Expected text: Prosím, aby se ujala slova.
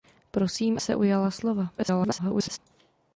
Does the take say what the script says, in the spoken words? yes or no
no